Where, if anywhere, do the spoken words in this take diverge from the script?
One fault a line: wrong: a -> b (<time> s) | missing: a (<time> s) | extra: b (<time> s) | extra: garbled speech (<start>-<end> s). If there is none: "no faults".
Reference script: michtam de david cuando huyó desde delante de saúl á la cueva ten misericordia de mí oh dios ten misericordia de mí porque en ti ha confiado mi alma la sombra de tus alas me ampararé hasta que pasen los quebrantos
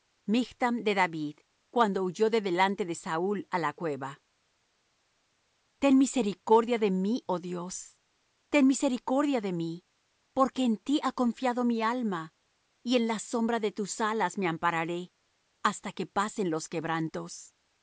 wrong: desde -> de (2.3 s)
extra: y en (12.8 s)